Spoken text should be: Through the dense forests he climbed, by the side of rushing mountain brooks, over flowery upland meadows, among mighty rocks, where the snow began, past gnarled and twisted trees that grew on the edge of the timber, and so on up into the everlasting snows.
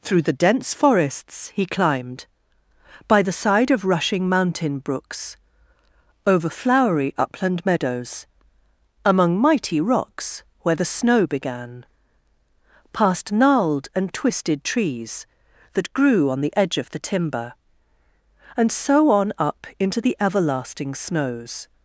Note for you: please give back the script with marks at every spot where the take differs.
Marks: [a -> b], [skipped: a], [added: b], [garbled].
Through the dense forests he climbed, by the side of rushing mountain brooks, over flowery upland meadows, among mighty rocks, where the snow began, past gnarled and twisted trees that grew on the edge of the timber, and so on up into the everlasting snows.